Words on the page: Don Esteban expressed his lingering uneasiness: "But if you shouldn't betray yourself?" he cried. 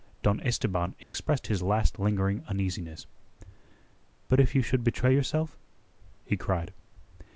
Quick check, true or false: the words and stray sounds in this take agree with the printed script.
false